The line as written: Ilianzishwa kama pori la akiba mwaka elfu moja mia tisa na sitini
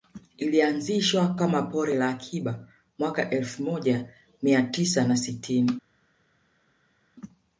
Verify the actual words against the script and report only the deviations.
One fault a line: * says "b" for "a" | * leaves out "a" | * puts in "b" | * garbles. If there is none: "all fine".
all fine